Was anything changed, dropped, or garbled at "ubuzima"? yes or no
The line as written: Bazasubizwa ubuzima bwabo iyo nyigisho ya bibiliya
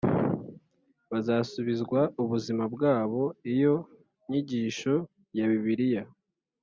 no